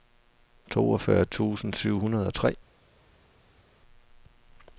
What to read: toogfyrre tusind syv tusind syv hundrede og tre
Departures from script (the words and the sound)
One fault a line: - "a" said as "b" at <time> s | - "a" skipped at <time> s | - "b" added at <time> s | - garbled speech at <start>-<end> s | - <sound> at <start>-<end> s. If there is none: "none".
- "tusind syv" skipped at 2.0 s